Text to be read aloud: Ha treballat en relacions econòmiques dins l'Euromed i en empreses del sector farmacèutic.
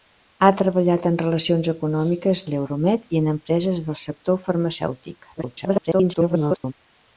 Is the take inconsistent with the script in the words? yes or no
yes